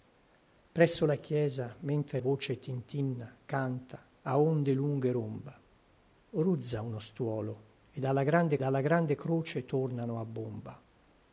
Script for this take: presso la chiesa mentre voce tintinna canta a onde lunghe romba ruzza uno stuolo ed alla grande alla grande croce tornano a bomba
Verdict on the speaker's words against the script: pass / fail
pass